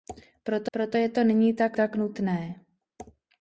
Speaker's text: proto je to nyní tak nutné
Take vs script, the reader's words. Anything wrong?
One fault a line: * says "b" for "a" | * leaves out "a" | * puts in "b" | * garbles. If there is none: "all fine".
* puts in "proto"
* puts in "tak"